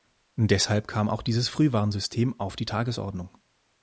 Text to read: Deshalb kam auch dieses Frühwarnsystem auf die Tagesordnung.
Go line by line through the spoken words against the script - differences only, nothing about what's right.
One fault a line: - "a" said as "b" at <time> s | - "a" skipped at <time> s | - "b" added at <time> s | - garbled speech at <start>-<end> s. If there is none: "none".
none